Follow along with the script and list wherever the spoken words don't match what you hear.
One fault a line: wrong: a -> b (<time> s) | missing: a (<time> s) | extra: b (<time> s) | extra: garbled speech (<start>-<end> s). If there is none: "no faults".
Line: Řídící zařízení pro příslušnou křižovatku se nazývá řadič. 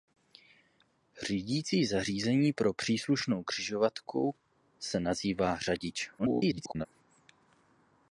extra: garbled speech (6.2-6.9 s)